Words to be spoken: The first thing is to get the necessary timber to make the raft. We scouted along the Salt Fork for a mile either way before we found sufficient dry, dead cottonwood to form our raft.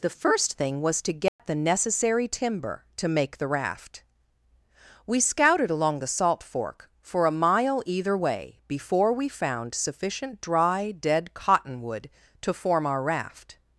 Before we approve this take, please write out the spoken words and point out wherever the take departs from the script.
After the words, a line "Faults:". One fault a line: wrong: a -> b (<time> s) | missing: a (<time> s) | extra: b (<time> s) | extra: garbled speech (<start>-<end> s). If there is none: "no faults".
The first thing was to get the necessary timber to make the raft. We scouted along the Salt Fork for a mile either way before we found sufficient dry, dead cottonwood to form our raft.
Faults:
wrong: is -> was (0.8 s)